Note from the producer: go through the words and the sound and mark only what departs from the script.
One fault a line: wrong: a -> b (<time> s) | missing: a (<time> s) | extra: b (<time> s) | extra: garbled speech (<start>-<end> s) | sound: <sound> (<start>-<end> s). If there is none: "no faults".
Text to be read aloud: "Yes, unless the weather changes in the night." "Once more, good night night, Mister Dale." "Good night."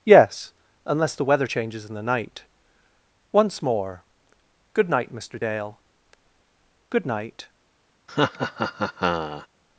missing: night (5.1 s)
sound: laugh (8.1-9.5 s)